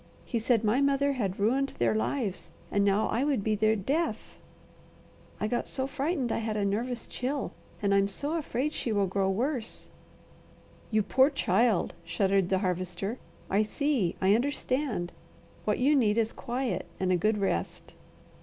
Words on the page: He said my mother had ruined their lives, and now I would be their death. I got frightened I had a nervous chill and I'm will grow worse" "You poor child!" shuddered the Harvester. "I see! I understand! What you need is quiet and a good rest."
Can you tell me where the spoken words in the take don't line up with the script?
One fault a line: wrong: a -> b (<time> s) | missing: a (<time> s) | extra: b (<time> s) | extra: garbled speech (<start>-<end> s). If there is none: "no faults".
extra: so (5.7 s)
extra: so afraid she (8.1 s)